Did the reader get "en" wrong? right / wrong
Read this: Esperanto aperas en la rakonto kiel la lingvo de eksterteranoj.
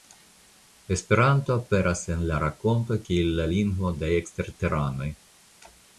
right